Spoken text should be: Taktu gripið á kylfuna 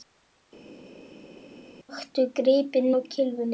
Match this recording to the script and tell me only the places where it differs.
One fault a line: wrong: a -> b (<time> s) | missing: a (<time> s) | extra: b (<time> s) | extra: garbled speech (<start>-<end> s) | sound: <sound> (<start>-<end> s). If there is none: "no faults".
no faults